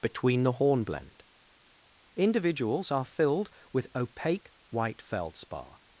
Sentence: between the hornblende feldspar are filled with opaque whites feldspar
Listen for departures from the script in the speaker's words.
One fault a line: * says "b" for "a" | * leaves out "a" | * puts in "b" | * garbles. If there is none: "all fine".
* says "individuals" for "feldspar"
* says "white" for "whites"